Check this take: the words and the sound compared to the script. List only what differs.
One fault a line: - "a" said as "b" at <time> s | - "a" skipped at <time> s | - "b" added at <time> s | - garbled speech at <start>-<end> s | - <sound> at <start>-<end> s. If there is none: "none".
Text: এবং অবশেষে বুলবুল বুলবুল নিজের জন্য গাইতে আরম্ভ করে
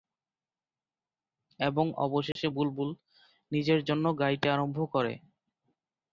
- dropout at 2.3-2.4 s
- "বুলবুল" skipped at 2.9 s